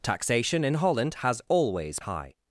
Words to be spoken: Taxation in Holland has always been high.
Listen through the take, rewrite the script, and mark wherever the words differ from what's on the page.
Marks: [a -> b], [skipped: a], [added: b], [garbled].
Taxation in Holland has always [skipped: been] high.